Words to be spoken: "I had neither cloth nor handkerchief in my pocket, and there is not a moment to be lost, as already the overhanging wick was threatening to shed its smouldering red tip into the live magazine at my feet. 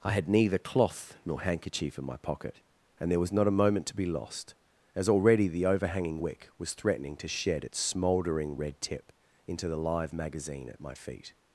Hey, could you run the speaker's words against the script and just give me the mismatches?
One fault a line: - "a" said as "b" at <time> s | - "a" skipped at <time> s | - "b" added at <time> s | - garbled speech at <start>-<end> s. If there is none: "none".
- "is" said as "was" at 3.2 s